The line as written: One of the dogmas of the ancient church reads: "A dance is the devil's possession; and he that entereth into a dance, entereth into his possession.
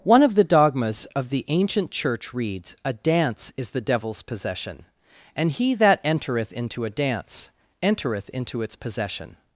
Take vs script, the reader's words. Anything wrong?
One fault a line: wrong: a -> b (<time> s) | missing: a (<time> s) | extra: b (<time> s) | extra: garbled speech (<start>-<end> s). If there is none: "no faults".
wrong: his -> its (8.6 s)